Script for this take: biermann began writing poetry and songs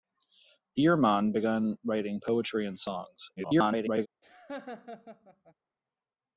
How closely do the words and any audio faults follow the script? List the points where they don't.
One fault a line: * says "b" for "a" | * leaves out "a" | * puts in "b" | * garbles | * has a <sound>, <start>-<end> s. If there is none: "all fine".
* garbles
* has a laugh, 4.2-5.5 s